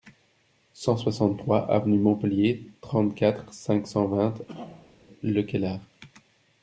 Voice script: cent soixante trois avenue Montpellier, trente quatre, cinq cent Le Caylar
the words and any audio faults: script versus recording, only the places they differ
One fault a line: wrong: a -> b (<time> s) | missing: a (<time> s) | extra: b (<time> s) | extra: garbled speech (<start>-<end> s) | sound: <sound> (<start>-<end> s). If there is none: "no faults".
extra: vingt (4.1 s)
sound: throat clearing (4.5-5.0 s)